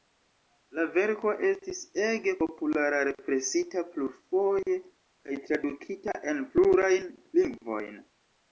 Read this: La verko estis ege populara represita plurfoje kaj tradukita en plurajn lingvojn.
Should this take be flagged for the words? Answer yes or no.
no